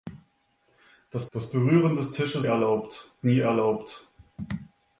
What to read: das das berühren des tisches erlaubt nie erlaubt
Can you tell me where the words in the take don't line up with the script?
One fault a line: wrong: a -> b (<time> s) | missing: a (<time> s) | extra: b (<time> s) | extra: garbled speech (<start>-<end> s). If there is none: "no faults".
no faults